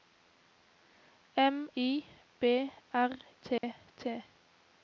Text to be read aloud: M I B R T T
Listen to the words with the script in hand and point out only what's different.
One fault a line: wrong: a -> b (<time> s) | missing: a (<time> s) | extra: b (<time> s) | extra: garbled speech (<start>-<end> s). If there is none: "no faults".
no faults